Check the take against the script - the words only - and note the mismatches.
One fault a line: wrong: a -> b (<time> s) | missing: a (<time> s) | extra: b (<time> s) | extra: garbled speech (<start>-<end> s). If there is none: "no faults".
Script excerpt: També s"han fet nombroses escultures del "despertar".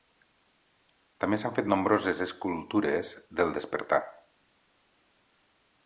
no faults